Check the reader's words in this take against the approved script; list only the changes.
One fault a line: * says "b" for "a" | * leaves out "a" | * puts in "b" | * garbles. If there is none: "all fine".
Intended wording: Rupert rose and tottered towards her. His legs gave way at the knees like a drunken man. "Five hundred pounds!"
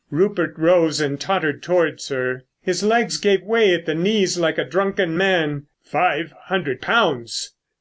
all fine